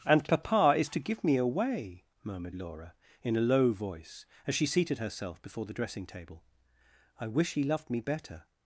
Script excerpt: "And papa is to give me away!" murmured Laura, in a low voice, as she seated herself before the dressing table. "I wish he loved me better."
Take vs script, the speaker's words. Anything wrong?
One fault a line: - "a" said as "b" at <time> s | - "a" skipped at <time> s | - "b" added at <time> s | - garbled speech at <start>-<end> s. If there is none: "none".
none